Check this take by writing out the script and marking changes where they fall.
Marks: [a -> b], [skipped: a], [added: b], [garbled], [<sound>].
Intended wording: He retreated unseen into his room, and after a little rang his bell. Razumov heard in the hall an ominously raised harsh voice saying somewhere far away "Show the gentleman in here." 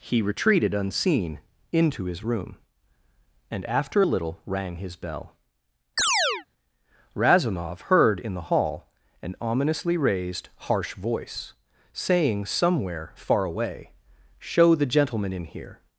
He retreated unseen into his room, and after a little rang his bell. [chirp] Razumov heard in the hall an ominously raised harsh voice saying somewhere far away "Show the gentleman in here."